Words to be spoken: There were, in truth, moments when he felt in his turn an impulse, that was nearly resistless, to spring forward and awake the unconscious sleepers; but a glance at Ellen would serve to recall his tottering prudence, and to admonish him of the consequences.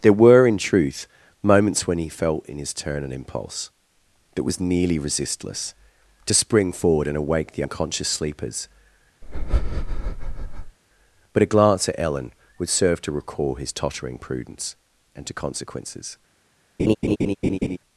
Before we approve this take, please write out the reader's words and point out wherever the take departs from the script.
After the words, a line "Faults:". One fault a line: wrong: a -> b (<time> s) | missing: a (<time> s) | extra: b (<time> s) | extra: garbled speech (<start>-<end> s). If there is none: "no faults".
There were, in truth, moments when he felt in his turn an impulse, that was nearly resistless, to spring forward and awake the unconscious sleepers; but a glance at Ellen would serve to recall his tottering prudence, and to consequences.
Faults:
missing: admonish him of the (15.3 s)